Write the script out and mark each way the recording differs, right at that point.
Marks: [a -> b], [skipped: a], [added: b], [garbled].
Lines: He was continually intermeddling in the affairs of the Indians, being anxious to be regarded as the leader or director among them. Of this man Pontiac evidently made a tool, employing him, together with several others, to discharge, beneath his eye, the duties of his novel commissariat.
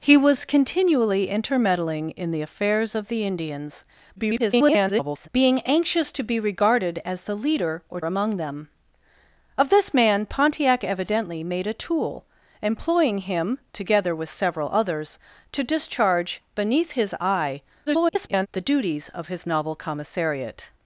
He was continually intermeddling in the affairs of the Indians, [garbled] being anxious to be regarded as the leader or [skipped: director] among them. Of this man Pontiac evidently made a tool, employing him, together with several others, to discharge, beneath his eye, [garbled] the duties of his novel commissariat.